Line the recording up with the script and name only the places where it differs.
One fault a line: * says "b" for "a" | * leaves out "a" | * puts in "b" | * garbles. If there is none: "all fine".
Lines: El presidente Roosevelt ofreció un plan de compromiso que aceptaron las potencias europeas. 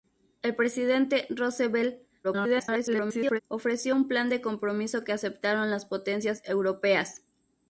* garbles